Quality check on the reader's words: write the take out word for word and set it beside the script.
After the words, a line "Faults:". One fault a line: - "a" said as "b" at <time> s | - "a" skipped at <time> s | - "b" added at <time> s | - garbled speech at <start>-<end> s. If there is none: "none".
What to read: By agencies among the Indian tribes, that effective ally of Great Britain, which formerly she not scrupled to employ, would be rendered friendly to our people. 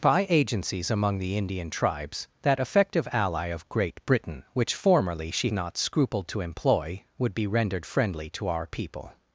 By agencies among the Indian tribes, that effective ally of Great Britain, which formerly she not scrupled to employ, would be rendered friendly to our people.
Faults:
none